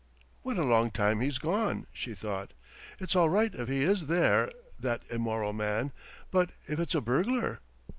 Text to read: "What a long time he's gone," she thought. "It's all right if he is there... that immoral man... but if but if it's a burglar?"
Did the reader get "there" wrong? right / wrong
right